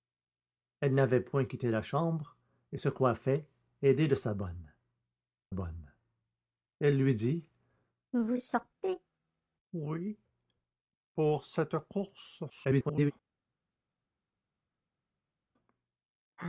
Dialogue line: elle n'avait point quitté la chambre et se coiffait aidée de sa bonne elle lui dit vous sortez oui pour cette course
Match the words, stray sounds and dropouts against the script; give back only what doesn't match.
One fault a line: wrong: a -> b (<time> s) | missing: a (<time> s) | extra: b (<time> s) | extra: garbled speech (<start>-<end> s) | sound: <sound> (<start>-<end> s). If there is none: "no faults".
extra: bonne (5.5 s)
extra: garbled speech (12.5-13.1 s)